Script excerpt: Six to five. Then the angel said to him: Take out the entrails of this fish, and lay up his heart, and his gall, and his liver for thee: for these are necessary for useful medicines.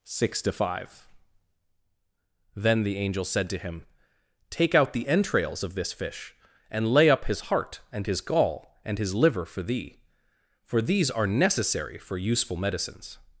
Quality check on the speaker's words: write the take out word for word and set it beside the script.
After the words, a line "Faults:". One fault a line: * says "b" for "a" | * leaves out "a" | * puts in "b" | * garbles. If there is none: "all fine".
Six to five. Then the angel said to him: Take out the entrails of this fish, and lay up his heart, and his gall, and his liver for thee: for these are necessary for useful medicines.
Faults:
all fine